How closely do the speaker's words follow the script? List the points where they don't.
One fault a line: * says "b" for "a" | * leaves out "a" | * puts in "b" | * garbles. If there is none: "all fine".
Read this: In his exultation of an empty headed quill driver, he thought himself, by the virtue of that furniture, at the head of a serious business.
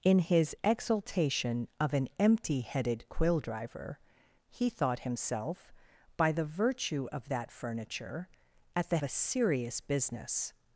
* leaves out "head of"